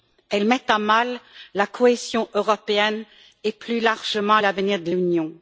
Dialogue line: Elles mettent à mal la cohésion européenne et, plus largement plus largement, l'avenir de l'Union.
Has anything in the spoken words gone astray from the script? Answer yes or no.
yes